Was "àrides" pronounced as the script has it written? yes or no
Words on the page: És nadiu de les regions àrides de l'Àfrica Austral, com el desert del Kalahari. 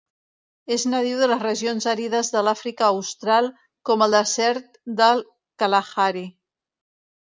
yes